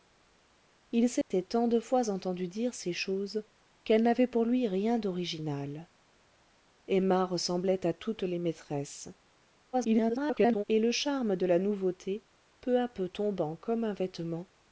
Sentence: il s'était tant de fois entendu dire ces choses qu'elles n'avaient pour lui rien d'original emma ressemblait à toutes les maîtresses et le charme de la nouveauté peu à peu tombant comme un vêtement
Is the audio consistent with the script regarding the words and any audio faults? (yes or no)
no